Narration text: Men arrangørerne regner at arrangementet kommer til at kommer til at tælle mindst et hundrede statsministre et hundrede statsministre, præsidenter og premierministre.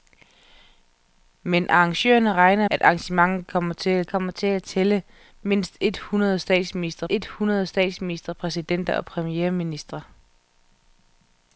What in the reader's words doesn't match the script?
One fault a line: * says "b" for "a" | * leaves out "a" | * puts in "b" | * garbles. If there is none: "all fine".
all fine